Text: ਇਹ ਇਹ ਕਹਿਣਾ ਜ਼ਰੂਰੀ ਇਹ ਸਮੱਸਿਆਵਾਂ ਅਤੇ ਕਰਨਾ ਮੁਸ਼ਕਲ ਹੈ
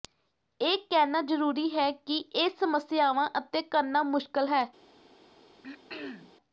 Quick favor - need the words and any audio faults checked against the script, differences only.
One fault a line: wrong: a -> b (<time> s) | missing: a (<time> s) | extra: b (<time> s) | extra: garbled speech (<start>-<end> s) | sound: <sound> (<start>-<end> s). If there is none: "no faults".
missing: ਇਹ (0.8 s)
extra: ਹੈ ਕਿ (1.7 s)
sound: throat clearing (5.6-6.4 s)